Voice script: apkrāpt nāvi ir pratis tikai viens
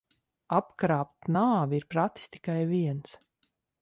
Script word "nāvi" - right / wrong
right